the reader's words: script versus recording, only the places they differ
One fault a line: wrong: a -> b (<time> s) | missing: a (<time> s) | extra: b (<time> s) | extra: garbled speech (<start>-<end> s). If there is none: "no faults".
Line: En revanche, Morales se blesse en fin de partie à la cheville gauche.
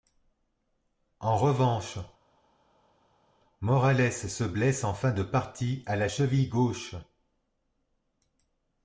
no faults